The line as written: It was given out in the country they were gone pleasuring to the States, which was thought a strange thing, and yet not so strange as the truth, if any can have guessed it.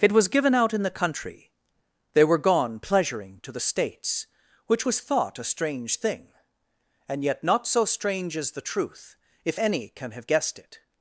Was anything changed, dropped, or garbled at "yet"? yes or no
no